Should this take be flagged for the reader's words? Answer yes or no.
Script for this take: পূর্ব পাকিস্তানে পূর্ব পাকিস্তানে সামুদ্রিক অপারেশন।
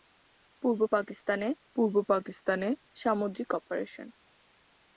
no